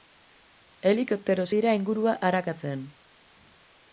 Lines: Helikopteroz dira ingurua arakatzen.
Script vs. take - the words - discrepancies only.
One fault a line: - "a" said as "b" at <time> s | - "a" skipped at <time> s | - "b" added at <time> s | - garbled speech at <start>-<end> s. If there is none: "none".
none